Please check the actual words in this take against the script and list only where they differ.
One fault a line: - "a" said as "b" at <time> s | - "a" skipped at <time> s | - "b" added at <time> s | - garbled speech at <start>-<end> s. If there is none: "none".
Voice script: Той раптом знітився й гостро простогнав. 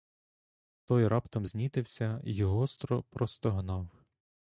none